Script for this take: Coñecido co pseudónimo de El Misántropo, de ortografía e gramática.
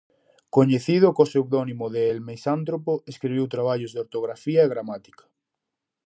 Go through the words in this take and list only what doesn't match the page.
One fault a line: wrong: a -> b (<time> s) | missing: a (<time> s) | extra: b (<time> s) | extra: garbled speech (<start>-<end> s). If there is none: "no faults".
extra: escribiu traballos (3.1 s)